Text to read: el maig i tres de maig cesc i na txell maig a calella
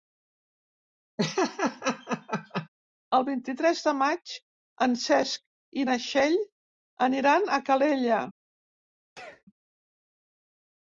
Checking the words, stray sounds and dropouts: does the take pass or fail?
fail